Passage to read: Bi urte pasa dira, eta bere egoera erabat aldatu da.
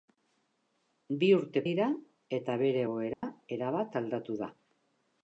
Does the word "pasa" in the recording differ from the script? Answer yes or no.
yes